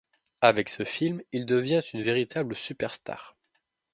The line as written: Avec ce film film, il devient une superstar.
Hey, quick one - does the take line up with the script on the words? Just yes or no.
no